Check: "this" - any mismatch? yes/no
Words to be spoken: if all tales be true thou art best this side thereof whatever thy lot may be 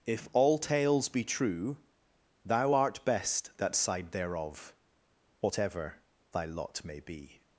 yes